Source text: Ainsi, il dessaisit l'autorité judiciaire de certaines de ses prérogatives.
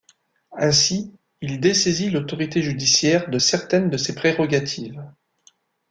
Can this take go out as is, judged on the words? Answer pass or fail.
pass